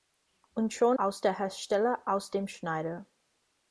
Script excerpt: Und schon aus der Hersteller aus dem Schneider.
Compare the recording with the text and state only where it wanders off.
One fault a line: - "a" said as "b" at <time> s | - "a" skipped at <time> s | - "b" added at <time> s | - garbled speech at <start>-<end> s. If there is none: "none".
none